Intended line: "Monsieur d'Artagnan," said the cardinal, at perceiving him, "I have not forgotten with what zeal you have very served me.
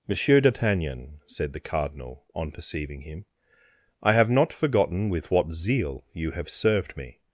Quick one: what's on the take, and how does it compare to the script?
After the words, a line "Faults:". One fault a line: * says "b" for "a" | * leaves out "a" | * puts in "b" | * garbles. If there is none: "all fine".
"Monsieur d'Artagnan," said the cardinal, on perceiving him, "I have not forgotten with what zeal you have served me.
Faults:
* says "on" for "at"
* leaves out "very"